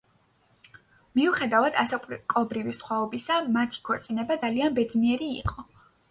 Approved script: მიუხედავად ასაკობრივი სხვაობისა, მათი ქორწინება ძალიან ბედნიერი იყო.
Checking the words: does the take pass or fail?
pass